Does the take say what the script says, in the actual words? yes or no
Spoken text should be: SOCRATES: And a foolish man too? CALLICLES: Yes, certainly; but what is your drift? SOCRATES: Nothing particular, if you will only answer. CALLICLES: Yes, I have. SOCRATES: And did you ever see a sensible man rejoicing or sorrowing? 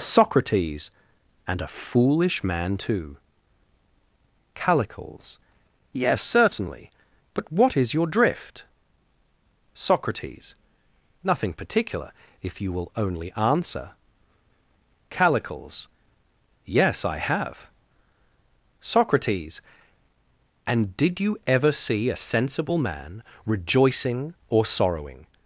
yes